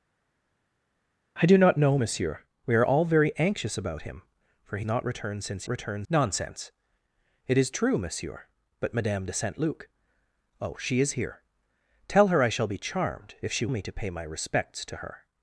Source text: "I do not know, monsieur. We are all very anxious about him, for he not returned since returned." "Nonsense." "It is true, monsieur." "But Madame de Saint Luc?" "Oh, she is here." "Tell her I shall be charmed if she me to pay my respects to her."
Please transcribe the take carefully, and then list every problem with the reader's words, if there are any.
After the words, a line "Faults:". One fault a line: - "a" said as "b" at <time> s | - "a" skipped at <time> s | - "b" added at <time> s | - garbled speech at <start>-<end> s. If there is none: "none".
"I do not know, monsieur. We are all very anxious about him, for he not returned since returned." "Nonsense." "It is true, monsieur." "But Madame de Saint Luc?" "Oh, she is here." "Tell her I shall be charmed if she me to pay my respects to her."
Faults:
none